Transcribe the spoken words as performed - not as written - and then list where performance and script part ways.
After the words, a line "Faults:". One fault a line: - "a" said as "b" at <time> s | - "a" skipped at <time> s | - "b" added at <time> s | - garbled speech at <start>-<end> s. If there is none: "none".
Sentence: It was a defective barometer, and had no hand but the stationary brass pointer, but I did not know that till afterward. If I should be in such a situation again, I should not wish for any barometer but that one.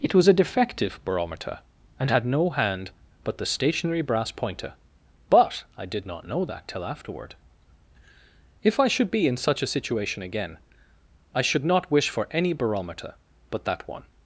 It was a defective barometer, and had no hand but the stationary brass pointer, but I did not know that till afterward. If I should be in such a situation again, I should not wish for any barometer but that one.
Faults:
none